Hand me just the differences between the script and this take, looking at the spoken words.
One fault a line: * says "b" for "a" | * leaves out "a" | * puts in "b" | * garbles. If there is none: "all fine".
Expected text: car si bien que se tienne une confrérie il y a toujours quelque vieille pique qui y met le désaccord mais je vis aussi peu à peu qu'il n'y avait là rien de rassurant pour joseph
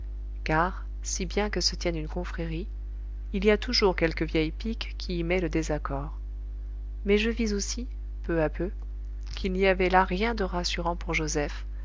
all fine